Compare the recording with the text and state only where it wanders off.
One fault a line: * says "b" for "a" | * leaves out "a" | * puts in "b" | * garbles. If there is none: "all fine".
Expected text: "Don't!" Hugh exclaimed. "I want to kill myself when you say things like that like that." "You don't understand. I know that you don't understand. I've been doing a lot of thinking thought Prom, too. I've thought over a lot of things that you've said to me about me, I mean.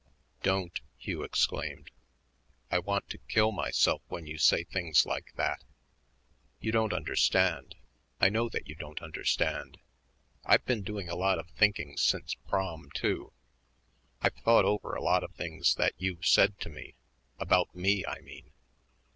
* leaves out "like that"
* says "since" for "thought"